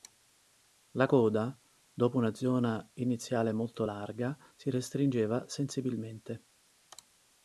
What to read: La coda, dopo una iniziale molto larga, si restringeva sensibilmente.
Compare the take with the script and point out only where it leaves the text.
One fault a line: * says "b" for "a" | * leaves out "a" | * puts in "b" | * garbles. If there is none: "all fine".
* puts in "zona"